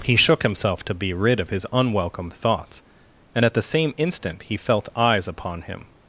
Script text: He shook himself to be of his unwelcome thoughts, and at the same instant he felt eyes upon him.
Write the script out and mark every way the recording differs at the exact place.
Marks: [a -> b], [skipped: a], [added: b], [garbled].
He shook himself to be [added: rid] of his unwelcome thoughts, and at the same instant he felt eyes upon him.